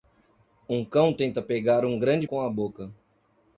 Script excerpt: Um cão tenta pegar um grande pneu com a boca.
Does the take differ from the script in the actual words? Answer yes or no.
yes